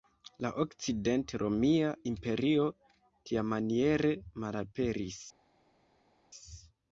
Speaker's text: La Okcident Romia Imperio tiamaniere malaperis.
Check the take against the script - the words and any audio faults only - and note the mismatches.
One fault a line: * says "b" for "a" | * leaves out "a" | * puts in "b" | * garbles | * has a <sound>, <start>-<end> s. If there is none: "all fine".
all fine